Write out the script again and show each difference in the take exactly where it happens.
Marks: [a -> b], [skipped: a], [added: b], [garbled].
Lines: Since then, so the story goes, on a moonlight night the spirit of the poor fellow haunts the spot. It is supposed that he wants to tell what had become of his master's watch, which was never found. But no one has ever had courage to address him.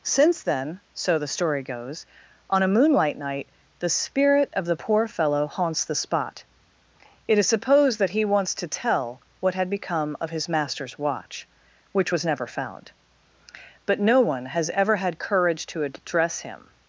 Since then, so the story goes, on a moonlight night the spirit of the poor fellow haunts the spot. It is supposed that he wants to tell what had become of his master's watch, which was never found. But no one has ever had courage to address him.